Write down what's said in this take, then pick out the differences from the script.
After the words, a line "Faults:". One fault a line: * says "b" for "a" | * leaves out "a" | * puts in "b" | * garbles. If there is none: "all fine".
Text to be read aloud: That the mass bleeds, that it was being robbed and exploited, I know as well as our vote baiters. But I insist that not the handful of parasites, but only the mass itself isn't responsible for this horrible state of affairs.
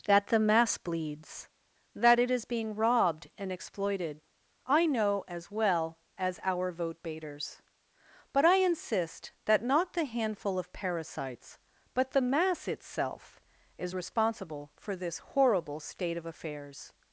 That the mass bleeds, that it is being robbed and exploited, I know as well as our vote baiters. But I insist that not the handful of parasites, but the mass itself is responsible for this horrible state of affairs.
Faults:
* says "is" for "was"
* leaves out "only"
* says "is" for "isn't"